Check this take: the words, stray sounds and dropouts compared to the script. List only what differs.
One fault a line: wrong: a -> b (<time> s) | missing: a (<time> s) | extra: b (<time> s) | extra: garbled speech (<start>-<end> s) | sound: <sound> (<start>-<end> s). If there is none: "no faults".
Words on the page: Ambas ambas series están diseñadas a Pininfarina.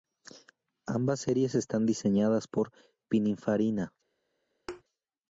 missing: ambas (1.2 s)
wrong: a -> por (2.4 s)
sound: thud (4.7-4.8 s)